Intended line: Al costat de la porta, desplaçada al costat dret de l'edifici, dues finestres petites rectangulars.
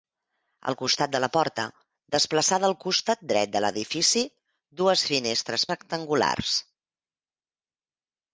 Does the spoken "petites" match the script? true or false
false